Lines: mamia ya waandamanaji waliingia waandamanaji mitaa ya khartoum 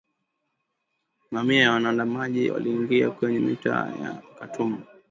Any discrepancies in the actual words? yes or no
yes